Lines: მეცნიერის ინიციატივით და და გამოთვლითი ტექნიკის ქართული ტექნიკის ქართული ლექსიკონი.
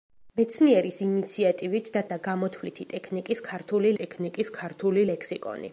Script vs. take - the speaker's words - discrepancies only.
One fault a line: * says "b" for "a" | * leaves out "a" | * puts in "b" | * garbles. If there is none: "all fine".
all fine